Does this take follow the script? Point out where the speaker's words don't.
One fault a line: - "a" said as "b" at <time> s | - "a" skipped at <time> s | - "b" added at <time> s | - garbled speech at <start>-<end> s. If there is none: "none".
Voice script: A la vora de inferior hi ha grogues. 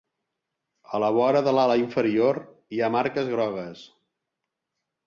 - "l'ala" added at 1.6 s
- "marques" added at 3.0 s